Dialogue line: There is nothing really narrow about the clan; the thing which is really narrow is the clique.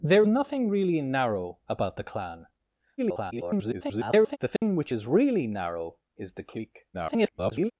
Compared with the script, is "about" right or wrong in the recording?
right